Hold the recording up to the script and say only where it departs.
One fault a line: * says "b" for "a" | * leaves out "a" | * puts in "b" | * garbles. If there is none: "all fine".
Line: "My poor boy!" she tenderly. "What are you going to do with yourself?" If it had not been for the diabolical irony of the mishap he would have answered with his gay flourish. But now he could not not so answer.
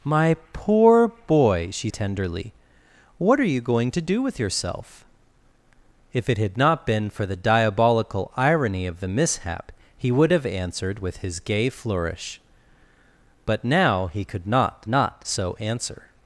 all fine